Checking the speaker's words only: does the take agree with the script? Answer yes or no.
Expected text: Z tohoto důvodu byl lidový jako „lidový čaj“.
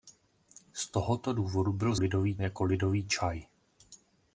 yes